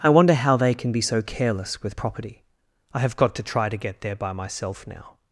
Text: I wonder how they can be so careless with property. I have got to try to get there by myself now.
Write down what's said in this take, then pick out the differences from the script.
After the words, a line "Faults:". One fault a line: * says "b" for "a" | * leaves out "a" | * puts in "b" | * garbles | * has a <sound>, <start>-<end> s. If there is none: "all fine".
I wonder how they can be so careless with property. I have got to try to get there by myself now.
Faults:
all fine